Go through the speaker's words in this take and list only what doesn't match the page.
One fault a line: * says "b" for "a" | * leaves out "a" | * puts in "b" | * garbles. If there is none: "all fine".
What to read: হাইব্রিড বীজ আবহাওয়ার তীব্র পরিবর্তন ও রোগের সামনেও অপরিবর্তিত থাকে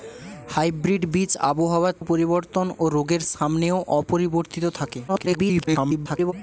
* leaves out "তীব্র"
* garbles